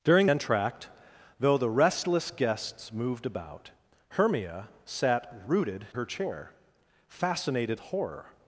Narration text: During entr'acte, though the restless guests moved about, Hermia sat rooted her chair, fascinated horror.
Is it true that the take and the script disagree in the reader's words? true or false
false